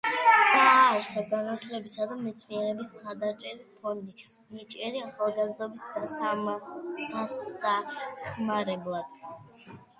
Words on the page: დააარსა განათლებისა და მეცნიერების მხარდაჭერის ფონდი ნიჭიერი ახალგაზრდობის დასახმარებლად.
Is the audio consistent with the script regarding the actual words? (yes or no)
yes